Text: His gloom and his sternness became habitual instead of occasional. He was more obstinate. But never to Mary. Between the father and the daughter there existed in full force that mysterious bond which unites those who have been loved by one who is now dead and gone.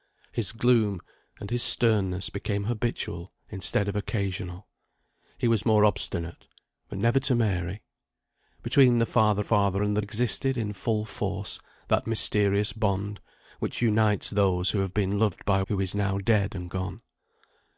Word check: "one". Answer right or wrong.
wrong